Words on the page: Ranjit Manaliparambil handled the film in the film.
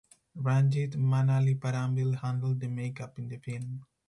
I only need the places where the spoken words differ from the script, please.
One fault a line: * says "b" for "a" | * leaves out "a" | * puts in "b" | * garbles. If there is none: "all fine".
* says "makeup" for "film"